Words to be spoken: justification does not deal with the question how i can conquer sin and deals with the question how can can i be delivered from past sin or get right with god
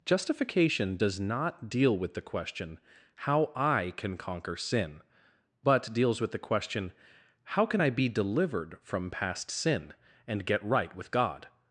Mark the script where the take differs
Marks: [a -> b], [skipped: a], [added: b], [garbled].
justification does not deal with the question how i can conquer sin [and -> but] deals with the question how can [skipped: can] i be delivered from past sin [or -> and] get right with god